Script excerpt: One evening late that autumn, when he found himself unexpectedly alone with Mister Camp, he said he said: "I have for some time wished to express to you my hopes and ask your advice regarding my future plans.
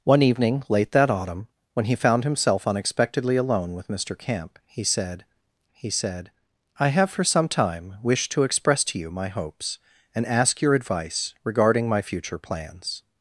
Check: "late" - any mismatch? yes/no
no